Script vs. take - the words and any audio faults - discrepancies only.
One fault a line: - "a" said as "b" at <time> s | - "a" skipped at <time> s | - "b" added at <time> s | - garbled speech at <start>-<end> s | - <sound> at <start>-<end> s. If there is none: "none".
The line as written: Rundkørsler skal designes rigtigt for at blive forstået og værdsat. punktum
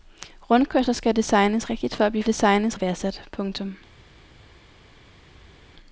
- "forstået" said as "designes" at 2.3 s